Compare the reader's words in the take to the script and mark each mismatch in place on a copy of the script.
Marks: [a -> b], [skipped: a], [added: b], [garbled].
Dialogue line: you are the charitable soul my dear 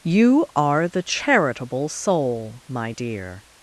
you are the charitable soul my dear